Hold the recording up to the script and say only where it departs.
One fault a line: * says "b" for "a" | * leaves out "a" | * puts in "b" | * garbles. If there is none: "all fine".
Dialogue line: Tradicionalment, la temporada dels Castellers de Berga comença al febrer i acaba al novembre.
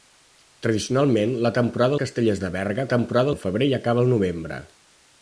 * leaves out "dels"
* says "temporada" for "comença"